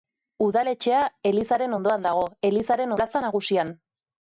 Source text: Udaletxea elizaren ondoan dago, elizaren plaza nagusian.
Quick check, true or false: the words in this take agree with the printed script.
true